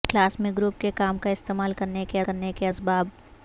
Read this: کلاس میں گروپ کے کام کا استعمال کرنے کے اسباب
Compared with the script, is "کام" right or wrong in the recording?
right